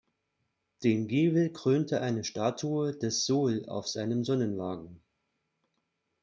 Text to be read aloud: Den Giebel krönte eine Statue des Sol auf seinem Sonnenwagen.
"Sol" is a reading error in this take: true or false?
false